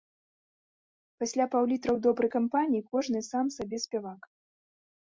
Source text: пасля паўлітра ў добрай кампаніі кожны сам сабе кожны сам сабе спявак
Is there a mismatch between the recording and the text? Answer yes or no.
yes